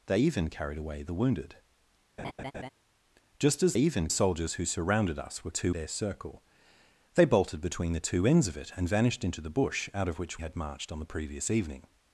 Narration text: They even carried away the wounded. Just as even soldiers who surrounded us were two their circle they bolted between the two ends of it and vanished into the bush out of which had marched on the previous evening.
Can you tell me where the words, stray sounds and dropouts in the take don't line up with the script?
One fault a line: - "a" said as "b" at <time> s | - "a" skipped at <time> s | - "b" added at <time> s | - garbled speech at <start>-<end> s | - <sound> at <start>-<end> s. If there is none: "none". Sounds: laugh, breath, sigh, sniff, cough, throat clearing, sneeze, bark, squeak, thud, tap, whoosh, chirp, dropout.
- laugh at 2.2-2.7 s